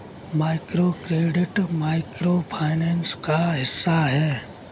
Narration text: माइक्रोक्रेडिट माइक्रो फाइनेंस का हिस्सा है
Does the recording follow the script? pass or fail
pass